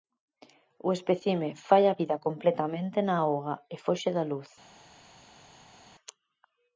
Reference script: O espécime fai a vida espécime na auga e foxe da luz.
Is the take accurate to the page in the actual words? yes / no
no